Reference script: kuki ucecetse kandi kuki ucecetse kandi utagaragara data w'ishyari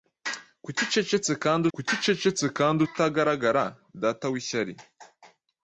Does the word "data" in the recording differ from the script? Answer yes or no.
no